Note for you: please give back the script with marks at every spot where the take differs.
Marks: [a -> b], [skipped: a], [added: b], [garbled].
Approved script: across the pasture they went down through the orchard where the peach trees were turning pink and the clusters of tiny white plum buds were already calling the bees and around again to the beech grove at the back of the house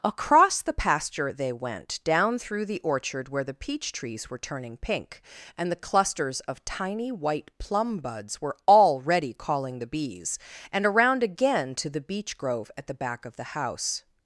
across the pasture they went down through the orchard where the peach trees were turning pink and the clusters of tiny white plum buds were already calling the bees and around again to the beech grove at the back of the house